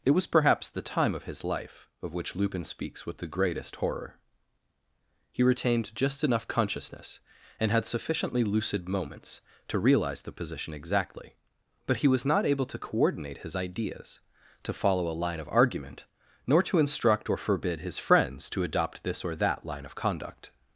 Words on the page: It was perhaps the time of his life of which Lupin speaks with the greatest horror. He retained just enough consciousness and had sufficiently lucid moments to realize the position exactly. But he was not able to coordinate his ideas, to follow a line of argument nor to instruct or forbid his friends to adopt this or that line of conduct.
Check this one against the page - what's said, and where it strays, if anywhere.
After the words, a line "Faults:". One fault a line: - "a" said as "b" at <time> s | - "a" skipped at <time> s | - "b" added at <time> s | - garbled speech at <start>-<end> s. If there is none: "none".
It was perhaps the time of his life of which Lupin speaks with the greatest horror. He retained just enough consciousness and had sufficiently lucid moments to realize the position exactly. But he was not able to coordinate his ideas, to follow a line of argument nor to instruct or forbid his friends to adopt this or that line of conduct.
Faults:
none